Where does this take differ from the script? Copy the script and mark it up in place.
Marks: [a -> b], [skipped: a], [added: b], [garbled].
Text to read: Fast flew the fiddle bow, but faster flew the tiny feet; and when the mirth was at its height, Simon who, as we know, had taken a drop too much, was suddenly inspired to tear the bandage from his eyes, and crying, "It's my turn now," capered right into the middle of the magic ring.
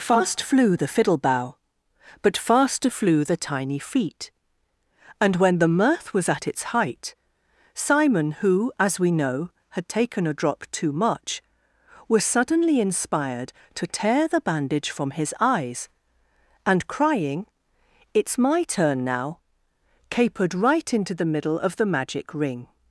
Fast flew the fiddle bow, but faster flew the tiny feet; and when the mirth was at its height, Simon who, as we know, had taken a drop too much, was suddenly inspired to tear the bandage from his eyes, and crying, "It's my turn now," capered right into the middle of the magic ring.